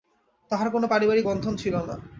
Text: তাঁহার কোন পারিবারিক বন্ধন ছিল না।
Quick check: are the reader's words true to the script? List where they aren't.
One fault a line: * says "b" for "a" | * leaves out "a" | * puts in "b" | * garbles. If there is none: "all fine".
all fine